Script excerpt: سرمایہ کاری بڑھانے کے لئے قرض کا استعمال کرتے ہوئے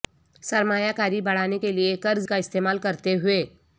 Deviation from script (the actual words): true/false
false